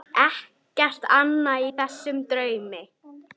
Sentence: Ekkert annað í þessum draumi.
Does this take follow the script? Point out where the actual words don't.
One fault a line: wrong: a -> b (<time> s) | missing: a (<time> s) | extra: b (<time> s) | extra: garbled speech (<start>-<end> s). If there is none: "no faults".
no faults